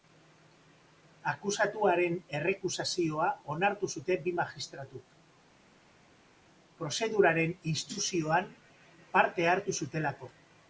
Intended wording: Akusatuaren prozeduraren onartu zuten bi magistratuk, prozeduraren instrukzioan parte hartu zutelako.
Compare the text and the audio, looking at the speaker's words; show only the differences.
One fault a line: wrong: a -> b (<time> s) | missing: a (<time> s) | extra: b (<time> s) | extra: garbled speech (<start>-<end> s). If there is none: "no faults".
wrong: prozeduraren -> errekusazioa (2.4 s)